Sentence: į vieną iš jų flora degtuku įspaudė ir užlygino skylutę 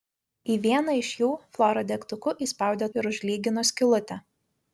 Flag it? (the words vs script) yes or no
no